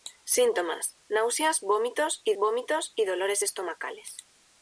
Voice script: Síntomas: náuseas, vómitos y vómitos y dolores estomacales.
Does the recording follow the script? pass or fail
pass